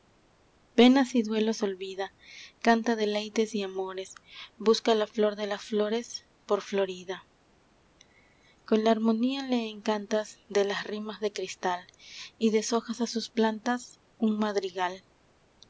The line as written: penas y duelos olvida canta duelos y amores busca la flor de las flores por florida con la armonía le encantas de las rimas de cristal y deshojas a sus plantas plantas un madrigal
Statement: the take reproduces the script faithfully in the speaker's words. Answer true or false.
false